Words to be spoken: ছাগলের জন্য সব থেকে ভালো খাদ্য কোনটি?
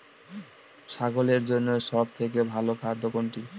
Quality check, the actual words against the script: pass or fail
pass